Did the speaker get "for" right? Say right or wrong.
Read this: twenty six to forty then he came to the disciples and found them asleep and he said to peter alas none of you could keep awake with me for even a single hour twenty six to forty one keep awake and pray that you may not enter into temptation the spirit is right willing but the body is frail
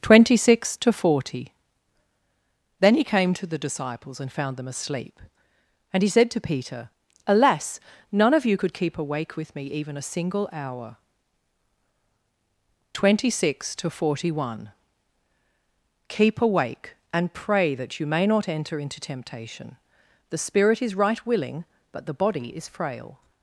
wrong